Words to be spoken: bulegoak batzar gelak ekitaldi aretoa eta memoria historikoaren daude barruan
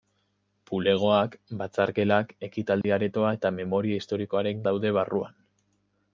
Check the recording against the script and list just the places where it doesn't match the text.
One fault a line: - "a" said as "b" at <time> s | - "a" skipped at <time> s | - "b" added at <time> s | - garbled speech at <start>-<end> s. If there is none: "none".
none